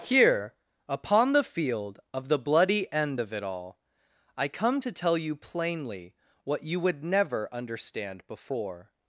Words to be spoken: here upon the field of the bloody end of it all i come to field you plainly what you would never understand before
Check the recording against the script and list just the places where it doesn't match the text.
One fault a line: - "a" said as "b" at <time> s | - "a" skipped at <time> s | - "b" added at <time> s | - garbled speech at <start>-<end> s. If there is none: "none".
- "field" said as "tell" at 4.9 s